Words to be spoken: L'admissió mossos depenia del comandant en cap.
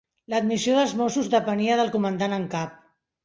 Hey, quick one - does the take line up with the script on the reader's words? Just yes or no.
no